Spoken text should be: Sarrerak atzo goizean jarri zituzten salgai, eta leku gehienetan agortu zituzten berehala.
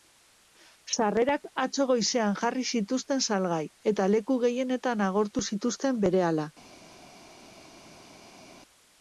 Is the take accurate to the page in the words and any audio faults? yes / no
yes